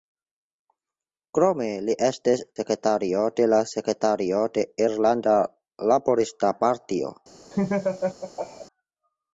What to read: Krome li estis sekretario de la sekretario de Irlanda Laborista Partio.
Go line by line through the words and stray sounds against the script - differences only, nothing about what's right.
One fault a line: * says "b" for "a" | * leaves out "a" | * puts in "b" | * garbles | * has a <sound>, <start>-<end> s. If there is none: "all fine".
* has a laugh, 7.5-8.7 s